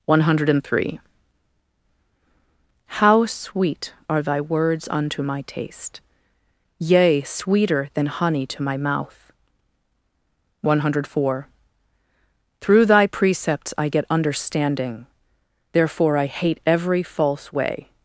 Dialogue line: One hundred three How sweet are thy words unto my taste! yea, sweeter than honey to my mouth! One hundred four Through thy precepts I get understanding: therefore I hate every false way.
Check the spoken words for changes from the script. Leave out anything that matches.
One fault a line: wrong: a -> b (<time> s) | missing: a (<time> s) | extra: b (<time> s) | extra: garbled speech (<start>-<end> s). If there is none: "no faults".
no faults